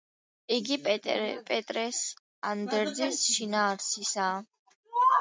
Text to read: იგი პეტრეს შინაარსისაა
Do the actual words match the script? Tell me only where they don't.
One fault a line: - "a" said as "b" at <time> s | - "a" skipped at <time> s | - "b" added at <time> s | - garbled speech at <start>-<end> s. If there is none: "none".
- "ანდერძის" added at 2.5 s